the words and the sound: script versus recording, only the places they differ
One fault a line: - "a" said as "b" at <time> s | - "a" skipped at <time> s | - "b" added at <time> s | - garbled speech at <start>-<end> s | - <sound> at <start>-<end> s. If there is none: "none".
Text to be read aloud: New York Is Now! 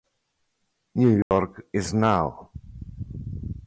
- dropout at 1.2-1.3 s